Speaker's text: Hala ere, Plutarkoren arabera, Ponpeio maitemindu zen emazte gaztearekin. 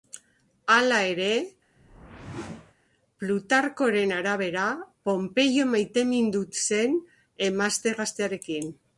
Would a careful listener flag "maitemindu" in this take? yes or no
no